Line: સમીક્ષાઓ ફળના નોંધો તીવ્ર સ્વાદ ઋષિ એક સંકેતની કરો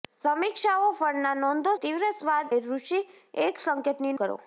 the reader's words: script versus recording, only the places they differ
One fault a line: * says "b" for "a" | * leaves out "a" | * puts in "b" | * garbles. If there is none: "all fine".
all fine